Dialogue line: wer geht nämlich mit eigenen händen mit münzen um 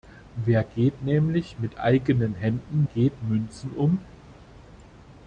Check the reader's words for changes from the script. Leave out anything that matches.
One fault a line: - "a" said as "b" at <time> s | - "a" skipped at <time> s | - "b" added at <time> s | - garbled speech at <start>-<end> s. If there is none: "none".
- "mit" said as "geht" at 2.8 s